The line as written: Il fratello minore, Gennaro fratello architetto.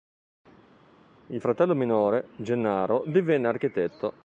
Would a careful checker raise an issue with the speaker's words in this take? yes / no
yes